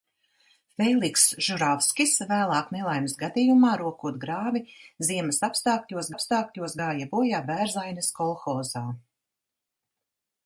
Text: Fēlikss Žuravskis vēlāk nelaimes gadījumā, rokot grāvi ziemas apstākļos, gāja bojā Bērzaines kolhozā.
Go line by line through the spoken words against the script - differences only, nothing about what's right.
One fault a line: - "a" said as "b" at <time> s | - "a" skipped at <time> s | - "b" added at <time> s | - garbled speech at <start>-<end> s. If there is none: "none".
- "apstākļos" added at 6.1 s